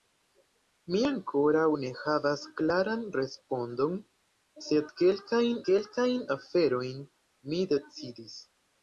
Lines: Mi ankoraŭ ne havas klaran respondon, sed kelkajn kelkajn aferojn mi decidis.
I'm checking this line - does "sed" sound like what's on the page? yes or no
yes